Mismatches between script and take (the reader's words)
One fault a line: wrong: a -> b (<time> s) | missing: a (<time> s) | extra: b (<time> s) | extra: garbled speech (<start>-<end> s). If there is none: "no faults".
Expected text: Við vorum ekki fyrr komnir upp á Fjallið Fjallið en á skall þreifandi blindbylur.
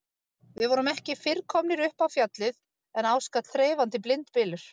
missing: Fjallið (2.6 s)